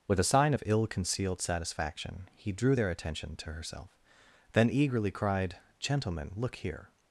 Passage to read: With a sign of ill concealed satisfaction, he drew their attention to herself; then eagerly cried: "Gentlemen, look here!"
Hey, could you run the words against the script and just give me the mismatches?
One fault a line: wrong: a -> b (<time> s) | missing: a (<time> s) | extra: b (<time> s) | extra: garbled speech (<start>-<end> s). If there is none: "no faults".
no faults